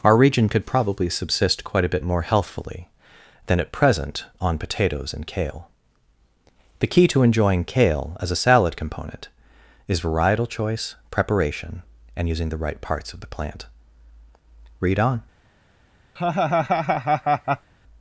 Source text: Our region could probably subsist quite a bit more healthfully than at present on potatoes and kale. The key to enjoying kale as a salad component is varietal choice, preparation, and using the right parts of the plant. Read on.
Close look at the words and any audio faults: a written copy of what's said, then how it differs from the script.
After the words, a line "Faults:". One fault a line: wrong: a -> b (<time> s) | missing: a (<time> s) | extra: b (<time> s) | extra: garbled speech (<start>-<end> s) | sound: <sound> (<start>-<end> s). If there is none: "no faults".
Our region could probably subsist quite a bit more healthfully than at present on potatoes and kale. The key to enjoying kale as a salad component is varietal choice, preparation, and using the right parts of the plant. Read on.
Faults:
sound: laugh (16.2-17.7 s)